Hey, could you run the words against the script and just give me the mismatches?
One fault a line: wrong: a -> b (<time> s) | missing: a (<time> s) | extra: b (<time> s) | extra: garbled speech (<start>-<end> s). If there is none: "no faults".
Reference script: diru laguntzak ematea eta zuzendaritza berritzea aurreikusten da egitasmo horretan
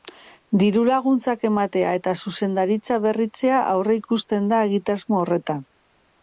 no faults